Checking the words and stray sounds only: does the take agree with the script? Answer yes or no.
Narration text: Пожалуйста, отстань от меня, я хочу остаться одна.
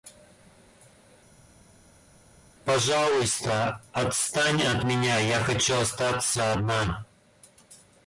yes